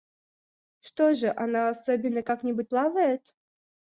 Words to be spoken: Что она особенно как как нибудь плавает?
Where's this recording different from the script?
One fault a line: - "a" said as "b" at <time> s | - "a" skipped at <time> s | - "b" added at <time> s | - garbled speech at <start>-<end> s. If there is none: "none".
- "же" added at 1.1 s
- "как" skipped at 2.4 s